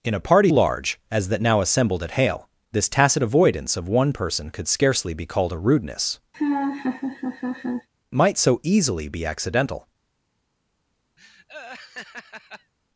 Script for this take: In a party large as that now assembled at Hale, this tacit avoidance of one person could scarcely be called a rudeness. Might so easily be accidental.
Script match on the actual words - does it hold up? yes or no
yes